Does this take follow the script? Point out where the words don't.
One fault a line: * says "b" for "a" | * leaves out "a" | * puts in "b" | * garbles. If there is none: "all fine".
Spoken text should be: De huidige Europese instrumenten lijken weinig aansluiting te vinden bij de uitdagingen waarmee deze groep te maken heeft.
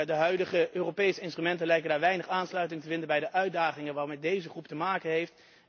all fine